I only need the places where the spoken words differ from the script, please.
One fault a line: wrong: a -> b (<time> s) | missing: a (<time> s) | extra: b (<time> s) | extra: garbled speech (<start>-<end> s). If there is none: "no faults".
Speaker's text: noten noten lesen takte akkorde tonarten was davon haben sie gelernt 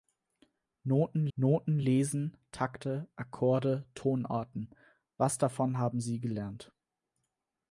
no faults